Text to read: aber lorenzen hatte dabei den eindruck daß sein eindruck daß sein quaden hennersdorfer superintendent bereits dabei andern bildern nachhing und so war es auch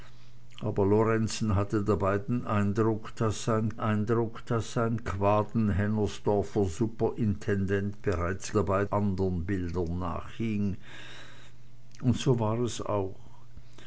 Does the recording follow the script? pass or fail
pass